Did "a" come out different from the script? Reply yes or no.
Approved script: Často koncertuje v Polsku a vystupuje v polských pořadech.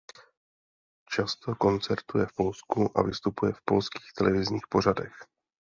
no